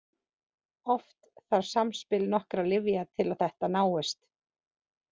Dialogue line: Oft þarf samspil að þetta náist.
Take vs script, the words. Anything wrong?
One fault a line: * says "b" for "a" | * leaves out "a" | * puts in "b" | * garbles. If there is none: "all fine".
* puts in "nokkurra lyfja til"